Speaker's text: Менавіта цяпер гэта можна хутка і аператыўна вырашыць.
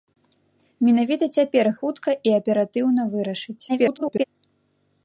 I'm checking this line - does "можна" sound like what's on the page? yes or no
no